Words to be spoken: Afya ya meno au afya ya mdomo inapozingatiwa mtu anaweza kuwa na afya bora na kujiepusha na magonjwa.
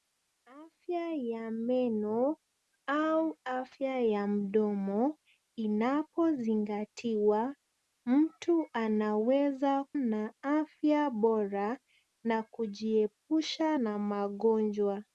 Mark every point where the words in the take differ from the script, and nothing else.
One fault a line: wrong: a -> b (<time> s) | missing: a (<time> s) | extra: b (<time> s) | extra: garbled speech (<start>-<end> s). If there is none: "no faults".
missing: kuwa (9.8 s)